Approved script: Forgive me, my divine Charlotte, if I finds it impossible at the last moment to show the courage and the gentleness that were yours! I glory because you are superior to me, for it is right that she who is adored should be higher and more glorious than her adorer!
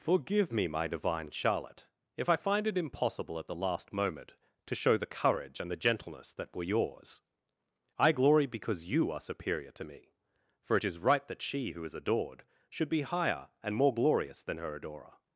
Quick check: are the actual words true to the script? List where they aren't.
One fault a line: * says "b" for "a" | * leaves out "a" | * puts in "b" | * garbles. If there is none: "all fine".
* says "find" for "finds"